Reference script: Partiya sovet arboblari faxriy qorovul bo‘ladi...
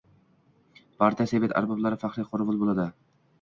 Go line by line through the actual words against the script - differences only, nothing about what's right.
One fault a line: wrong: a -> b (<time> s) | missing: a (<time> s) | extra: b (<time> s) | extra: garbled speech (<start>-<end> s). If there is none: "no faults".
no faults